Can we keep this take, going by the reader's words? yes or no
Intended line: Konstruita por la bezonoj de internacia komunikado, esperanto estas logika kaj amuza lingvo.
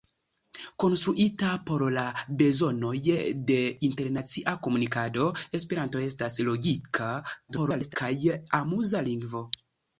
no